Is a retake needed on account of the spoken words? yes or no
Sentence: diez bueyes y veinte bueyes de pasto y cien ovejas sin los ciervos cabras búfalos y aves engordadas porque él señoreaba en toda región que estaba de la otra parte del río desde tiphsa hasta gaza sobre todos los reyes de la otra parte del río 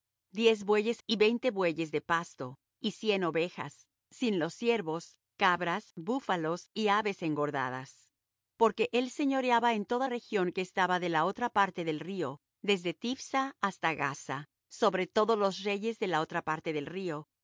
no